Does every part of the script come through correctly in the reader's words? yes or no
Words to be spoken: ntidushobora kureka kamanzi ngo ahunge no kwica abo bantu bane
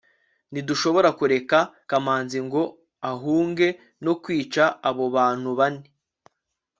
yes